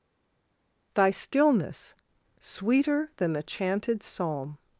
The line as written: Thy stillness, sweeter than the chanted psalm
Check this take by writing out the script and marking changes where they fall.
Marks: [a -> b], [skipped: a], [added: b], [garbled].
Thy stillness, sweeter than the chanted psalm